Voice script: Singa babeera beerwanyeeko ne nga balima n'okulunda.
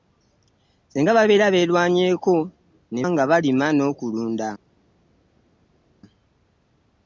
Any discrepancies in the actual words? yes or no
no